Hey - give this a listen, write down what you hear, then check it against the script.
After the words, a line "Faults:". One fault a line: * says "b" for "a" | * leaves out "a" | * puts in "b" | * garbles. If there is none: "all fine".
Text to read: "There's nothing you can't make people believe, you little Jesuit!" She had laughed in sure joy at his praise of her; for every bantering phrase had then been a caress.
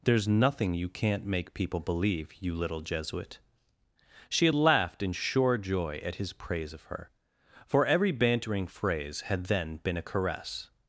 "There's nothing you can't make people believe, you little Jesuit!" She had laughed in sure joy at his praise of her; for every bantering phrase had then been a caress.
Faults:
all fine